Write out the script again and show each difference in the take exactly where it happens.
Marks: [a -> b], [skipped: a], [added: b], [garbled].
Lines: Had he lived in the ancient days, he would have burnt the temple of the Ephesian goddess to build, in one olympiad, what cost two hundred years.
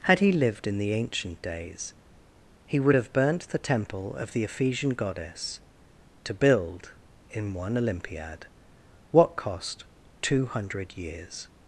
Had he lived in the ancient days, he would have burnt the temple of the Ephesian goddess to build, in one olympiad, what cost two hundred years.